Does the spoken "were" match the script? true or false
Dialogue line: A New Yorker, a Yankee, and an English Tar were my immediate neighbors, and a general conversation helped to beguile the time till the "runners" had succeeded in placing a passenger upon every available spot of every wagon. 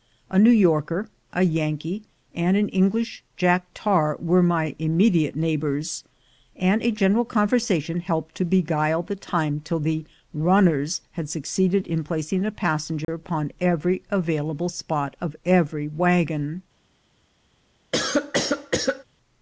true